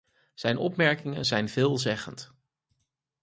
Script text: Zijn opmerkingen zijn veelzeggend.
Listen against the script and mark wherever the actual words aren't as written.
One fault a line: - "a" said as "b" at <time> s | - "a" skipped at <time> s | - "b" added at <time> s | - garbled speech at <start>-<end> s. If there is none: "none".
none